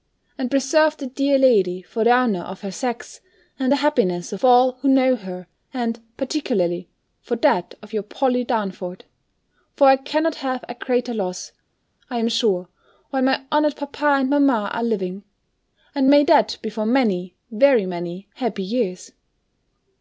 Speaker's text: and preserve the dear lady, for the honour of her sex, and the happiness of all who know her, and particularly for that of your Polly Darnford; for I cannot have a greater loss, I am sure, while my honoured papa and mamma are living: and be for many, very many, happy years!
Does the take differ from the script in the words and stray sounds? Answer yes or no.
yes